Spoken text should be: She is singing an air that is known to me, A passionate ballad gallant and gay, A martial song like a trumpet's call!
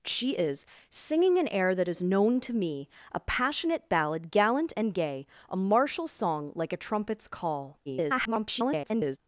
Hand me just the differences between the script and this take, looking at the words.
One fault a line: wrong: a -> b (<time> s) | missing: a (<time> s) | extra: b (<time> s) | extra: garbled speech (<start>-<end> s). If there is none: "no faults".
extra: garbled speech (7.9-9.2 s)